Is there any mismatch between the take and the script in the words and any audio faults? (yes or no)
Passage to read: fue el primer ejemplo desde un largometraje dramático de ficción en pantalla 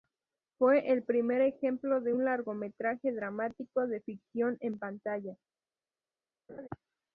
yes